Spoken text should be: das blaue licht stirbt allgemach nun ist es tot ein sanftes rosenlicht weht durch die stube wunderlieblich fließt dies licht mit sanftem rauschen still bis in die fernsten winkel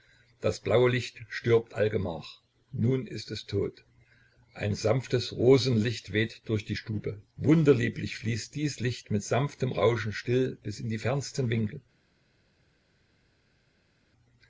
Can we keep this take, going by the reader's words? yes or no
yes